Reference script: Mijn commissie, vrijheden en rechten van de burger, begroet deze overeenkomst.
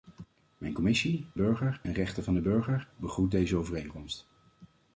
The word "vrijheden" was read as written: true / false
false